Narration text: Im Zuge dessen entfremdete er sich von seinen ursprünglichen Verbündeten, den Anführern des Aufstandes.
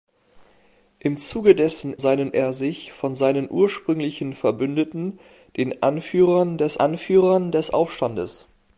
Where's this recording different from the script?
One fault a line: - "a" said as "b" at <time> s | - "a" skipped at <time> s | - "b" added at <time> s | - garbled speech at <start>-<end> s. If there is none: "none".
- "entfremdete" said as "seinen" at 2.0 s
- "Anführern des" added at 6.8 s